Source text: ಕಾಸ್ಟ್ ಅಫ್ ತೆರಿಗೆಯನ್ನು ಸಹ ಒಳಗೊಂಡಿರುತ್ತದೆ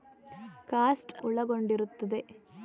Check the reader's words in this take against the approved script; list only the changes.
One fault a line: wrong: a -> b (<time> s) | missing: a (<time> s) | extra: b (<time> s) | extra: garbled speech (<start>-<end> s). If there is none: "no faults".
missing: ಅಫ್ ತೆರಿಗೆಯನ್ನು ಸಹ (1.1 s)